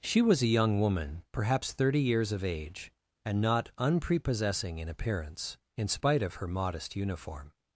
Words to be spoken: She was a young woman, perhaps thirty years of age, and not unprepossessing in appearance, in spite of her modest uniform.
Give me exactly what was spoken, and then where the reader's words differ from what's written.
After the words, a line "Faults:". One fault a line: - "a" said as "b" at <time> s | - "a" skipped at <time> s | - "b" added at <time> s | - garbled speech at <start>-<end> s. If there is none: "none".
She was a young woman, perhaps thirty years of age, and not unprepossessing in appearance, in spite of her modest uniform.
Faults:
none